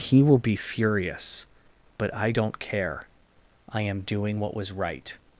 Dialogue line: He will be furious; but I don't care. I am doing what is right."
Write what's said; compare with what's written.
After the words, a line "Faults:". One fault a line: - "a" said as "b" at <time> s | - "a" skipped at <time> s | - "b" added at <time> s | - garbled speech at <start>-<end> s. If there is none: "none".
He will be furious; but I don't care. I am doing what was right."
Faults:
- "is" said as "was" at 4.5 s